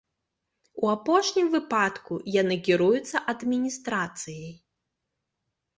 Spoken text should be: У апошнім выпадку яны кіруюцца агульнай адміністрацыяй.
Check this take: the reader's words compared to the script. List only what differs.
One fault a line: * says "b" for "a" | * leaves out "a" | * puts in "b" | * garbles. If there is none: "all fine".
* leaves out "агульнай"